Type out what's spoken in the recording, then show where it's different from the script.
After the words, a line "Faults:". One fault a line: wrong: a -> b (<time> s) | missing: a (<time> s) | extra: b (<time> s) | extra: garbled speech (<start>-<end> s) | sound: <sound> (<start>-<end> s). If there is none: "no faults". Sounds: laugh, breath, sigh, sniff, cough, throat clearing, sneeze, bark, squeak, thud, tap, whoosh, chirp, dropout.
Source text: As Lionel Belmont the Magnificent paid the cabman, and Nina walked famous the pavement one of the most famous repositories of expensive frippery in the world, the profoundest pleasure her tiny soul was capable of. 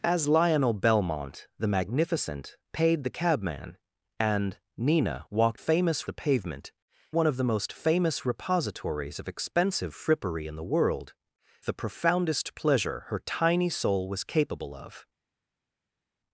As Lionel Belmont the Magnificent paid the cabman, and Nina walked famous the pavement one of the most famous repositories of expensive frippery in the world, the profoundest pleasure her tiny soul was capable of.
Faults:
no faults